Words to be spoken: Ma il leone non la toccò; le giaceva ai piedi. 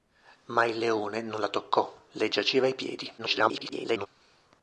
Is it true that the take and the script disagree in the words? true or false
true